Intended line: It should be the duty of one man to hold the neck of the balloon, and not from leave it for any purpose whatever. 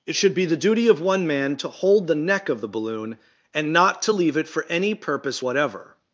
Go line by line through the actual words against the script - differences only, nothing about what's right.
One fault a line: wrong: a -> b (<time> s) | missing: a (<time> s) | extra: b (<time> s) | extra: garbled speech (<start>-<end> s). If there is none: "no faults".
wrong: from -> to (4.0 s)